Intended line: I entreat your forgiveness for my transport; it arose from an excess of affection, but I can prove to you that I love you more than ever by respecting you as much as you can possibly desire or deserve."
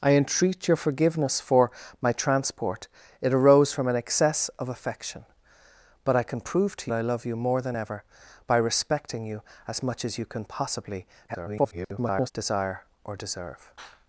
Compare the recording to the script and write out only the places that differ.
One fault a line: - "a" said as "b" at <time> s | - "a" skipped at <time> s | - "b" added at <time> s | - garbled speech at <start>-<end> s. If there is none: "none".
- "you that" skipped at 6.9 s
- garbled speech at 11.3-12.3 s